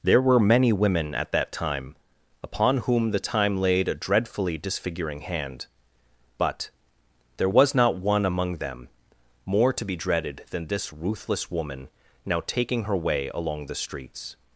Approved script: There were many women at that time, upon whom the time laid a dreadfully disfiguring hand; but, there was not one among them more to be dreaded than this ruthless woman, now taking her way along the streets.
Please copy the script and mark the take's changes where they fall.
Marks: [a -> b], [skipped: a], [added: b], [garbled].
There were many women at that time, upon whom the time laid a dreadfully disfiguring hand; but, there was not one among them more to be dreaded than this ruthless woman, now taking her way along the streets.